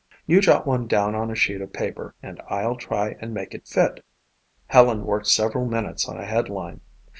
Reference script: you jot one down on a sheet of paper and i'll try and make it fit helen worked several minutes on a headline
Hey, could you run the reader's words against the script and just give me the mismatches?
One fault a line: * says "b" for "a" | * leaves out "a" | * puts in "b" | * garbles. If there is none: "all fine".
all fine